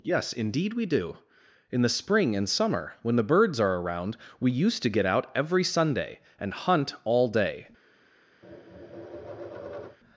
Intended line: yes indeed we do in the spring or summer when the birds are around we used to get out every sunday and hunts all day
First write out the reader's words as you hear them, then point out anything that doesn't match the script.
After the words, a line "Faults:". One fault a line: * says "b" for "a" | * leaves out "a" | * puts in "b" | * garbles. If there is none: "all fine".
yes indeed we do in the spring and summer when the birds are around we used to get out every sunday and hunt all day
Faults:
* says "and" for "or"
* says "hunt" for "hunts"